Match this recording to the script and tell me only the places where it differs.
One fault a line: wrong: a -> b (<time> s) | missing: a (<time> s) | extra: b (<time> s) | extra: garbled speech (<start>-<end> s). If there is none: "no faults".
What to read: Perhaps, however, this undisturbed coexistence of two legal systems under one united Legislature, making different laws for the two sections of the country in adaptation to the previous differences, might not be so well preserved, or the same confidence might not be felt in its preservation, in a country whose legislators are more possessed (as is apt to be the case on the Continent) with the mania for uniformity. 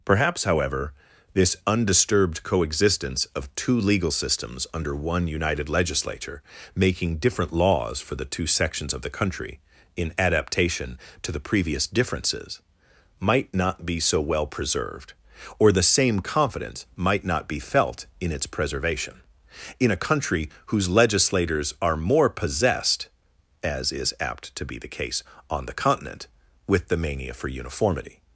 no faults